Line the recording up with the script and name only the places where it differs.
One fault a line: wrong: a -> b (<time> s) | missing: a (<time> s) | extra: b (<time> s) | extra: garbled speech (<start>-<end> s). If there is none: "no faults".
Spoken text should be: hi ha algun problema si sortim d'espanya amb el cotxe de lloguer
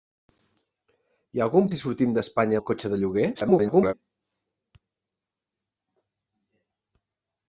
missing: problema (1.7 s)
missing: amb (2.6 s)
extra: garbled speech (3.3-3.9 s)